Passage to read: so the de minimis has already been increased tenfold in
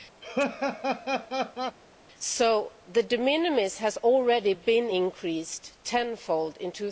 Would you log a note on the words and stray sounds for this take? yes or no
yes